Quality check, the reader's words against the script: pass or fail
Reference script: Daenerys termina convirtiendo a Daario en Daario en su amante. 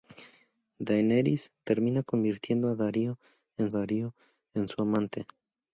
pass